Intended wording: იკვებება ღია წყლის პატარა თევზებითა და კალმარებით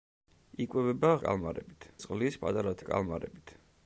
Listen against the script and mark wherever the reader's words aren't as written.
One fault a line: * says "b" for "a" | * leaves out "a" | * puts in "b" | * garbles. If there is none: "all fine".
* says "კალმარებით" for "ღია"
* leaves out "თევზებითა"